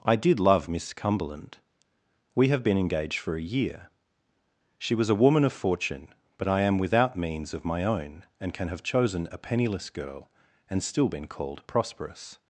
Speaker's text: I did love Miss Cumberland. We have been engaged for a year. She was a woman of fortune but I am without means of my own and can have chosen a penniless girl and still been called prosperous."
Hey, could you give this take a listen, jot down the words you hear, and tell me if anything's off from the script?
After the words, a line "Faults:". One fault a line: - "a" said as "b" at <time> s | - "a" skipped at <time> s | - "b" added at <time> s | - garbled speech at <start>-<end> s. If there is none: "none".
I did love Miss Cumberland. We have been engaged for a year. She was a woman of fortune but I am without means of my own and can have chosen a penniless girl and still been called prosperous."
Faults:
none